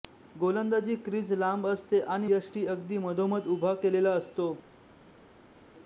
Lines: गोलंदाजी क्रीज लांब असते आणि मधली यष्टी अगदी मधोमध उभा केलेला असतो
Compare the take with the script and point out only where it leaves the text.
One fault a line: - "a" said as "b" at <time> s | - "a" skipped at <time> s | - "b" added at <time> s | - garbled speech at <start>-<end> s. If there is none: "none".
- "मधली" skipped at 2.3 s